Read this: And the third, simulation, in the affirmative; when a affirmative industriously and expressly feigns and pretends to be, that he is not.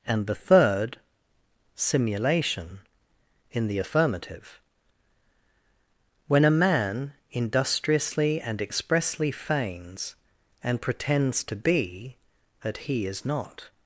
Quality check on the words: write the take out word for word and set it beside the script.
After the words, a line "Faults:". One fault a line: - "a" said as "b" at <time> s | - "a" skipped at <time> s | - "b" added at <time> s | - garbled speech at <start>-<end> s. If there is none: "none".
And the third, simulation, in the affirmative; when a man industriously and expressly feigns and pretends to be, that he is not.
Faults:
- "affirmative" said as "man" at 6.6 s